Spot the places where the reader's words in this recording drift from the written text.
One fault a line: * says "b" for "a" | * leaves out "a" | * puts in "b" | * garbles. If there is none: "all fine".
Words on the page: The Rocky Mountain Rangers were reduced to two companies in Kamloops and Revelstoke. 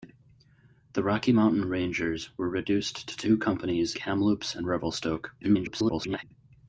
* leaves out "in"
* garbles